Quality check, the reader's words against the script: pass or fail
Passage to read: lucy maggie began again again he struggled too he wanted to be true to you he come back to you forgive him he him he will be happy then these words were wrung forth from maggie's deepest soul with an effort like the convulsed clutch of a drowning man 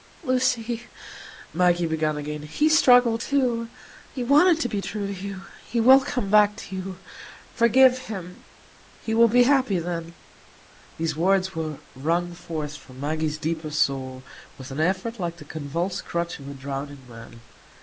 fail